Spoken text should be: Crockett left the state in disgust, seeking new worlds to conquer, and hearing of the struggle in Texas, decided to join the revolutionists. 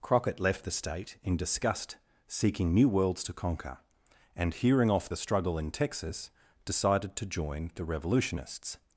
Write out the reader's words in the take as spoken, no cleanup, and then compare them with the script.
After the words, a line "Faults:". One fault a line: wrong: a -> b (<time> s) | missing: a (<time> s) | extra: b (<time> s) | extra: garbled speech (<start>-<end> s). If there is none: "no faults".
Crockett left the state in disgust, seeking new worlds to conquer, and hearing off the struggle in Texas, decided to join the revolutionists.
Faults:
wrong: of -> off (4.9 s)